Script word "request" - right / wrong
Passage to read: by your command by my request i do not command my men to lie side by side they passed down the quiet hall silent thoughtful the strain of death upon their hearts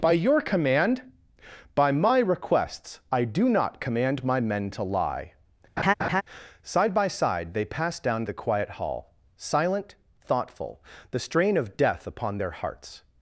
wrong